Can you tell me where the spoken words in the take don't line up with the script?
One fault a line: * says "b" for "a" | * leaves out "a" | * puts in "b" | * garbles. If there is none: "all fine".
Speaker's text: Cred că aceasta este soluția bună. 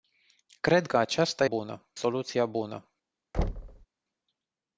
* says "bună" for "este"